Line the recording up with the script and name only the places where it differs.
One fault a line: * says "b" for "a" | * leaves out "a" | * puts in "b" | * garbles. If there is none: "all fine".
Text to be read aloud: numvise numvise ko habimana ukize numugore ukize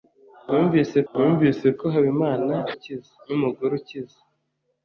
all fine